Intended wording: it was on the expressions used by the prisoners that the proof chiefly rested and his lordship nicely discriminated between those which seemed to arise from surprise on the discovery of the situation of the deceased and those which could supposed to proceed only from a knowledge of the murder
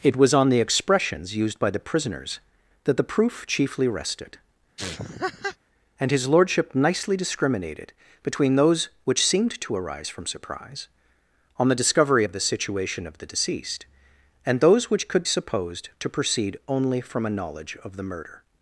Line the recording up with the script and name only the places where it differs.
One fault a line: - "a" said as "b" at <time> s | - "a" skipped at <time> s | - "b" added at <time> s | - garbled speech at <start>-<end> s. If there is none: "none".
none